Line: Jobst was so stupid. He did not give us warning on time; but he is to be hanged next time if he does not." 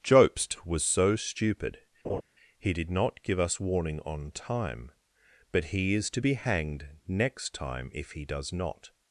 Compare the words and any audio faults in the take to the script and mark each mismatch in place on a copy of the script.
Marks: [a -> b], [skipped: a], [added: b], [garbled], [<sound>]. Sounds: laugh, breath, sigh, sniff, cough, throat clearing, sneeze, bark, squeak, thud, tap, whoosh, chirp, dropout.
Jobst was so stupid. [laugh] He did not give us warning on time; but he is to be hanged next time if he does not."